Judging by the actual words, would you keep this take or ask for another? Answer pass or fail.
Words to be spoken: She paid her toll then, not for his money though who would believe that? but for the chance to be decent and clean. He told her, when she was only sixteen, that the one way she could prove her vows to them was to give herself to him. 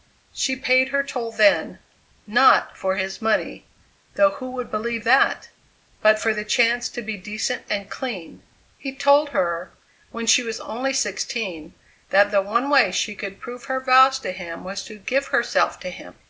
fail